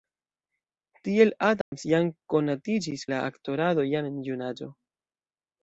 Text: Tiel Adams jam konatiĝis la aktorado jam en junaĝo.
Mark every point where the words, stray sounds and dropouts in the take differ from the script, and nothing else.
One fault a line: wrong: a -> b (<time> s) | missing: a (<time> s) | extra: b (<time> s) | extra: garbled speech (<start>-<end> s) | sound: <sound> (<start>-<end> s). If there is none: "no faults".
sound: dropout (1.6-1.7 s)